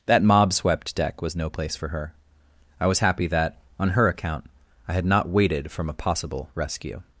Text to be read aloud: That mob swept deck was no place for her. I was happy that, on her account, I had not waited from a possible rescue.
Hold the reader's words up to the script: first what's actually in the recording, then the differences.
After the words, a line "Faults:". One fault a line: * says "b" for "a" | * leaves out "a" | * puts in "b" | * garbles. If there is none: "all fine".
That mob swept deck was no place for her. I was happy that, on her account, I had not waited from a possible rescue.
Faults:
all fine